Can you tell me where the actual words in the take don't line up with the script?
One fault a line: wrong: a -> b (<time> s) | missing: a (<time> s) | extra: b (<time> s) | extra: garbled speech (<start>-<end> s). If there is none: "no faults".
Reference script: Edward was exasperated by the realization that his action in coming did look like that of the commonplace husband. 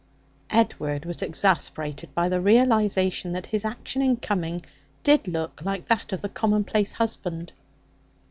no faults